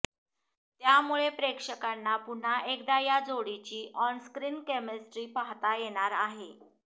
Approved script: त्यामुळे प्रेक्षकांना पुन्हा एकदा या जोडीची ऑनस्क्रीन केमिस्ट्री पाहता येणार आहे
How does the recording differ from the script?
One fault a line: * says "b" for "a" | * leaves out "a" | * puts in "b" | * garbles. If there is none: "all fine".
all fine